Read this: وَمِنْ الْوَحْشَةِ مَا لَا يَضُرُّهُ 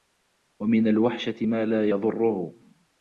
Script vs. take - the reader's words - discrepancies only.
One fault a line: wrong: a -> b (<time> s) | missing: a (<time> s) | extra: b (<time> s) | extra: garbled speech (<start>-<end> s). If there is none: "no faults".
no faults